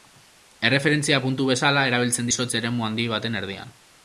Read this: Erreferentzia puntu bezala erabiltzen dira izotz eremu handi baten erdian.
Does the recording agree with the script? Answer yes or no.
no